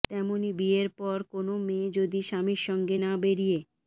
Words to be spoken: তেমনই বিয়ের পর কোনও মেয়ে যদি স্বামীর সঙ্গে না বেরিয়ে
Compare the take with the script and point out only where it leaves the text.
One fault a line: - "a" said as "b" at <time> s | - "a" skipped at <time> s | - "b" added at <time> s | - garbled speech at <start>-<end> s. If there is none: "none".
none